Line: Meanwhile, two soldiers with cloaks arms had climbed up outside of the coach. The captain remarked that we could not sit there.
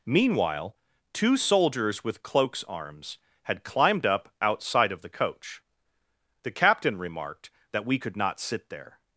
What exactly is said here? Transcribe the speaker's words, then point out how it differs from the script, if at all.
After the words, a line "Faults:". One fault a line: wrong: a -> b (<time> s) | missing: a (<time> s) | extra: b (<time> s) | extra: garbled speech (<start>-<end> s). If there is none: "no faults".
Meanwhile, two soldiers with cloaks arms had climbed up outside of the coach. The captain remarked that we could not sit there.
Faults:
no faults